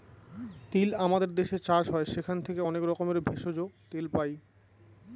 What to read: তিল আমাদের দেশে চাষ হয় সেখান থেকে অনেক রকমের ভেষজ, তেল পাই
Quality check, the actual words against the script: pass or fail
pass